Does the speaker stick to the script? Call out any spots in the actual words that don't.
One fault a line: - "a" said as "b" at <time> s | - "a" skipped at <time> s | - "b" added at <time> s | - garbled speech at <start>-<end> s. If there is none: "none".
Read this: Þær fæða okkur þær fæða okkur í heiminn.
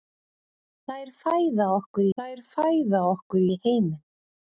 none